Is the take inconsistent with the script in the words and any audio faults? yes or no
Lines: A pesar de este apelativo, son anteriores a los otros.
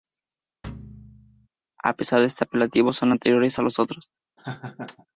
yes